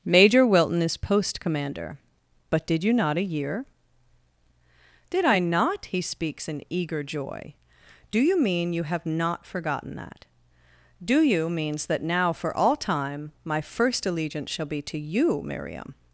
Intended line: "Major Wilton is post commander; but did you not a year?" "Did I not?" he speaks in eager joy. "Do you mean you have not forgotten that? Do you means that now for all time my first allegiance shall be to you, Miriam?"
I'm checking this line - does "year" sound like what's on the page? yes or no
yes